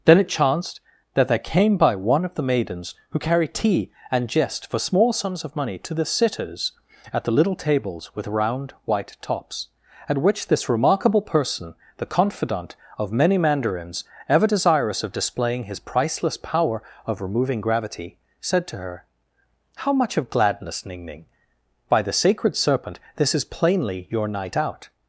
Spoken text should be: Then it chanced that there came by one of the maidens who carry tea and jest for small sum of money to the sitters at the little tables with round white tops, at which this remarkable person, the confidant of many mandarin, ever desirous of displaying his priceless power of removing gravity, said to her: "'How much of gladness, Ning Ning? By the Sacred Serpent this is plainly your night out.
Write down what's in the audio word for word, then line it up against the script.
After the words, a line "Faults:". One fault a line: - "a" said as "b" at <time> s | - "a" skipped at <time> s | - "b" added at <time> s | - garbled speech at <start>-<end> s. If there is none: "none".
Then it chanced that there came by one of the maidens who carry tea and jest for small sums of money to the sitters at the little tables with round white tops, at which this remarkable person, the confidant of many mandarins, ever desirous of displaying his priceless power of removing gravity, said to her: "'How much of gladness, Ning Ning? By the Sacred Serpent this is plainly your night out.
Faults:
- "sum" said as "sums" at 5.1 s
- "mandarin" said as "mandarins" at 13.4 s